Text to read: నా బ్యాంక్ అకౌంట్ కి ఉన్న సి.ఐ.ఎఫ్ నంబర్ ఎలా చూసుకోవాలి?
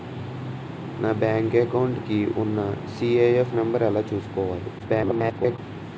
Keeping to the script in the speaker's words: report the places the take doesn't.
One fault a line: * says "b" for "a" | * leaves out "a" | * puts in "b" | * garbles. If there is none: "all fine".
* garbles